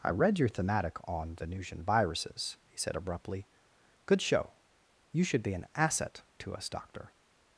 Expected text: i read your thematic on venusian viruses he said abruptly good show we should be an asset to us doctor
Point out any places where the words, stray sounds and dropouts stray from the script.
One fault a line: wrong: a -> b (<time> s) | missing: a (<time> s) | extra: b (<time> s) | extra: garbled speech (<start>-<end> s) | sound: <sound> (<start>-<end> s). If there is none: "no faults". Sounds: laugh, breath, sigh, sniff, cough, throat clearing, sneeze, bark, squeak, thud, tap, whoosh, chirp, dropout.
wrong: we -> you (5.1 s)